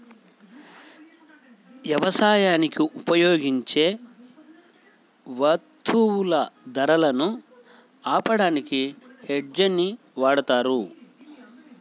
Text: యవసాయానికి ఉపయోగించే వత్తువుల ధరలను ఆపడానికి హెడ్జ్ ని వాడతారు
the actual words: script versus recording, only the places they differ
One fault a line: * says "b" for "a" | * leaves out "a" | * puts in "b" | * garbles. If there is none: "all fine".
all fine